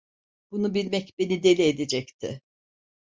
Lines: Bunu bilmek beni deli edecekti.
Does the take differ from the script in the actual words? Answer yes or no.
no